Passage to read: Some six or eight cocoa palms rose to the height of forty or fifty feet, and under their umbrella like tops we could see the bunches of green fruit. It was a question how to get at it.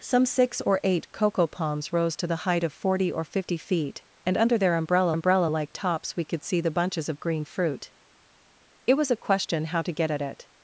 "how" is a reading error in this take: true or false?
false